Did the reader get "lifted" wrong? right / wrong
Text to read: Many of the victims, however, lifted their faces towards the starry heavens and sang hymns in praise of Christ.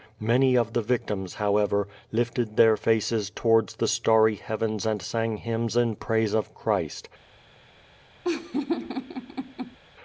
right